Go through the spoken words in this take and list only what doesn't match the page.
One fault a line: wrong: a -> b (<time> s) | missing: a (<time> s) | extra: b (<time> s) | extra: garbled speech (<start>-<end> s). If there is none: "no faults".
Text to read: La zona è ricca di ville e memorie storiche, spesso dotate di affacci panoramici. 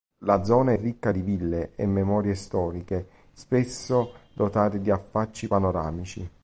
no faults